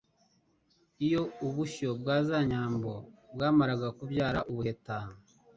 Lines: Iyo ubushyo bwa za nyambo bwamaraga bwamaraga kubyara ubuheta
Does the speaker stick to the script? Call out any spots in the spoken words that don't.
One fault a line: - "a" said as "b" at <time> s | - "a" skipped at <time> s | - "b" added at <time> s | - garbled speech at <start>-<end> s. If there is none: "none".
- "bwamaraga" skipped at 3.9 s